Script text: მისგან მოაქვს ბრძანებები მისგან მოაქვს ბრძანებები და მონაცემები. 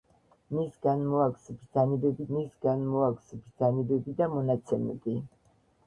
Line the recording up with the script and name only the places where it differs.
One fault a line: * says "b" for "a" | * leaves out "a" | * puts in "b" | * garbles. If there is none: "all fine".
all fine